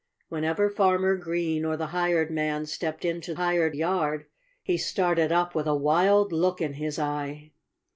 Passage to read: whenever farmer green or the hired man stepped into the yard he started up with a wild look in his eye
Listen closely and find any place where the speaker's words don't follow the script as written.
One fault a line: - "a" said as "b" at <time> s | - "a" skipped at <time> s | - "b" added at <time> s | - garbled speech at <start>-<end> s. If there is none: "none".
- "the" said as "hired" at 3.4 s